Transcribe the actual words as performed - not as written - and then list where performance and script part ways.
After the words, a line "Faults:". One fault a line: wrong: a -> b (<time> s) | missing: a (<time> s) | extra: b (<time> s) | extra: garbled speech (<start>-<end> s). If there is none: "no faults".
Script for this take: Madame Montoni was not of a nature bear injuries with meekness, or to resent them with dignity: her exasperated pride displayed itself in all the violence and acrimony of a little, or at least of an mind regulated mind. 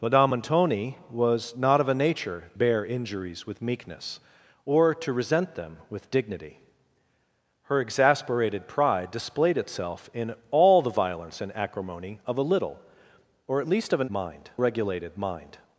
Madame Montoni was not of a nature bear injuries with meekness, or to resent them with dignity: her exasperated pride displayed itself in all the violence and acrimony of a little, or at least of an mind regulated mind.
Faults:
no faults